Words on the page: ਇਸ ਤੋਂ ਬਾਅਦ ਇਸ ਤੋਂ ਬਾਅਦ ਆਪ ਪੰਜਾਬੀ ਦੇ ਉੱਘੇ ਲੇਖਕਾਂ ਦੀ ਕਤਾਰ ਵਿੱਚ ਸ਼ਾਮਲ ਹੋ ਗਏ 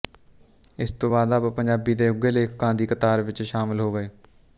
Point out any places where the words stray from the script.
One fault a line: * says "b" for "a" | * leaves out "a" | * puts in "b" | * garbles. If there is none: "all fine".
* leaves out "ਇਸ ਤੋਂ ਬਾਅਦ"